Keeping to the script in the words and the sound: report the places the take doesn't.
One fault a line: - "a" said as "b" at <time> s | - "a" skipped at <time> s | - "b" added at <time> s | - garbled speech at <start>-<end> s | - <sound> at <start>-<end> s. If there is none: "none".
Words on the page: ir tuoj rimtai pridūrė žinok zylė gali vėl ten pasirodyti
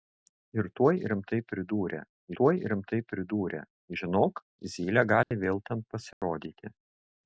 - "tuoj rimtai pridūrė" added at 2.4 s
- dropout at 5.2-5.3 s
- dropout at 6.1-6.2 s